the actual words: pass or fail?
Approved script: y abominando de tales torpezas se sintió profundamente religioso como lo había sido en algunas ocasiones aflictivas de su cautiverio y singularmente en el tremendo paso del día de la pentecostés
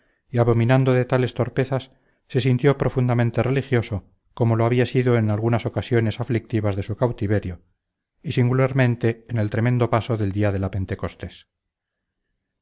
pass